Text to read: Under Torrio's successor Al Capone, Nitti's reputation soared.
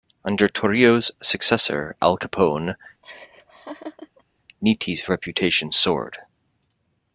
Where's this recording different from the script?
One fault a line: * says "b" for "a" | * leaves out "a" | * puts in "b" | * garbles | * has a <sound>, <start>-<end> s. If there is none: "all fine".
* has a laugh, 3.0-4.2 s